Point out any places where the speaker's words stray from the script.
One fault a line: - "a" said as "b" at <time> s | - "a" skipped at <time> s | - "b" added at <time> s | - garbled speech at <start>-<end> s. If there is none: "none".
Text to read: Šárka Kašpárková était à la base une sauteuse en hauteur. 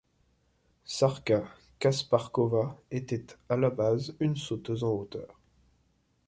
none